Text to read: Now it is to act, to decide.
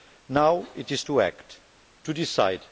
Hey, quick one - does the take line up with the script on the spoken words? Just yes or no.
yes